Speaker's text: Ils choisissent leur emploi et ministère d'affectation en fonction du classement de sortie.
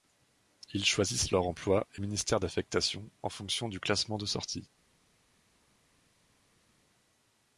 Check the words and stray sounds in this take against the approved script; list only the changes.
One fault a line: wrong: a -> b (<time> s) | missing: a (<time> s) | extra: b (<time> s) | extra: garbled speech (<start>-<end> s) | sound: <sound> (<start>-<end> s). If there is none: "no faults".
no faults